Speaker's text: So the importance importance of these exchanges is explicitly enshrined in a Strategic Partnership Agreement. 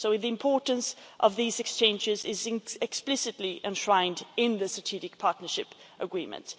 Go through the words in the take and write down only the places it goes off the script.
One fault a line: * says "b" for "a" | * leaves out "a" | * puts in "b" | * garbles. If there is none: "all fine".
* leaves out "importance"
* says "the" for "a"